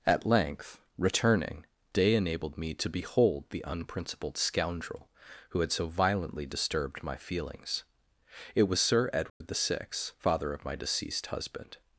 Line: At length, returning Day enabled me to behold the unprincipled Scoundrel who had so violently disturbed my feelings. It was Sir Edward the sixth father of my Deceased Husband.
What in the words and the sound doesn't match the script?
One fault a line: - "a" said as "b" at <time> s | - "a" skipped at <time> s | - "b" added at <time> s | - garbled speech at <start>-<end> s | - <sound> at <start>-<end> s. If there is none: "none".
- dropout at 9.3-9.4 s